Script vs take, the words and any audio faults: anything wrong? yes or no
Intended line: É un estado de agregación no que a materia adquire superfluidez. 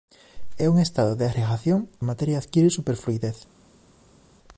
yes